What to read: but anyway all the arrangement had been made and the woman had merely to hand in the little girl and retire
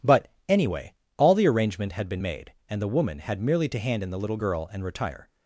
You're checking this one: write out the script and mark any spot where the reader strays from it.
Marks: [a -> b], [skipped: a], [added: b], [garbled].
but anyway all the arrangement had been made and the woman had merely to hand in the little girl and retire